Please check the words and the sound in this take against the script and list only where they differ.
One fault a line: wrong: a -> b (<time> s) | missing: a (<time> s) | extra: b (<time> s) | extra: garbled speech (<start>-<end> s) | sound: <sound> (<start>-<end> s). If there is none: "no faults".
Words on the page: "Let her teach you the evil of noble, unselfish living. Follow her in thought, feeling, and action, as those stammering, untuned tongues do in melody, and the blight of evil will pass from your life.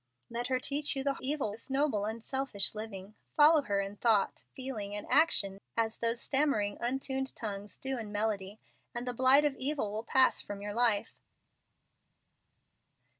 no faults